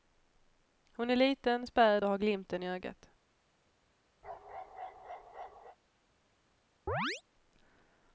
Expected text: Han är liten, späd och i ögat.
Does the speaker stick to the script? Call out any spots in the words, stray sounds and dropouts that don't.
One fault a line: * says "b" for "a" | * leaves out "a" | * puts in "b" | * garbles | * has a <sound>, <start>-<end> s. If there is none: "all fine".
* says "Hon" for "Han"
* puts in "har glimten"
* has a bark, 4.2-5.8 s
* has a chirp, 6.9-7.2 s